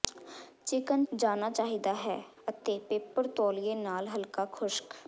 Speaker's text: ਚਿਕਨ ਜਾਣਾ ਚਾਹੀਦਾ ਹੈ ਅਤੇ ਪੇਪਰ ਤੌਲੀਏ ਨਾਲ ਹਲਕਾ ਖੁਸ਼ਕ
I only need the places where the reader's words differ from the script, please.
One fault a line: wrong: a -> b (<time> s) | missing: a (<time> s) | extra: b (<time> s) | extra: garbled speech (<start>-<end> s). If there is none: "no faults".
no faults